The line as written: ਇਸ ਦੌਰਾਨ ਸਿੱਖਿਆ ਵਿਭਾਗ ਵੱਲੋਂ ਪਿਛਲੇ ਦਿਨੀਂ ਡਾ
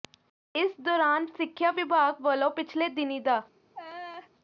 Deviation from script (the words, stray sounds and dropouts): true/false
true